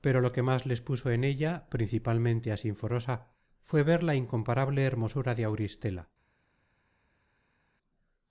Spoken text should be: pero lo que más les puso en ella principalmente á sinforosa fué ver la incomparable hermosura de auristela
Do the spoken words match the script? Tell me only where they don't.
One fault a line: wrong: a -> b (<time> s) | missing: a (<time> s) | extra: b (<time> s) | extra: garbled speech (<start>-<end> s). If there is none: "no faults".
no faults